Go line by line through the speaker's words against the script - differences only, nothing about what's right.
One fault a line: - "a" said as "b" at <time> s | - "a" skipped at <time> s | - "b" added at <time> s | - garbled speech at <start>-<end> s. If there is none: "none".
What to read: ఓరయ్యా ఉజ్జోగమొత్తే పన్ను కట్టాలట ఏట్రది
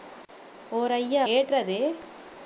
- "ఉజ్జోగమొత్తే పన్ను కట్టాలట" skipped at 1.2 s